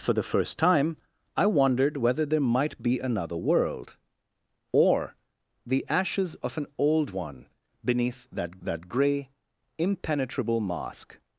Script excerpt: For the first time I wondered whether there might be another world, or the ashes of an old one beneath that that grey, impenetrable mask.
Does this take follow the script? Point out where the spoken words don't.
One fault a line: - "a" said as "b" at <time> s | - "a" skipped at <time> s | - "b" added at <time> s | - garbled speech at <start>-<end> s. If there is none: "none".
none